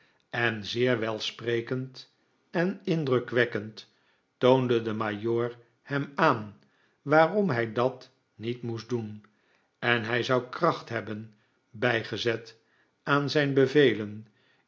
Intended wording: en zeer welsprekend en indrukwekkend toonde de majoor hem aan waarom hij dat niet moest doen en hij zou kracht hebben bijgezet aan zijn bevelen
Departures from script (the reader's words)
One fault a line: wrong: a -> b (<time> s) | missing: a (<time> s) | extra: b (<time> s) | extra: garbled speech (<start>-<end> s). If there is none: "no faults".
no faults